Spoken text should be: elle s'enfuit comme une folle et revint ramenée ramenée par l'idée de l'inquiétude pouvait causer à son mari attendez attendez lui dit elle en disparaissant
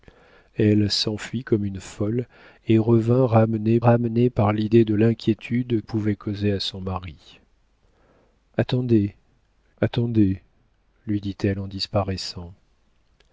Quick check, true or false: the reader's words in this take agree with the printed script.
true